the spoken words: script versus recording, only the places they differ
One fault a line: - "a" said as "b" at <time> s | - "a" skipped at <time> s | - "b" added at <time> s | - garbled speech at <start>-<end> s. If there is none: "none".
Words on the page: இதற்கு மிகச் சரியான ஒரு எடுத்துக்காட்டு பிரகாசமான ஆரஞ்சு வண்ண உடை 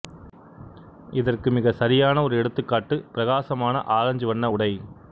none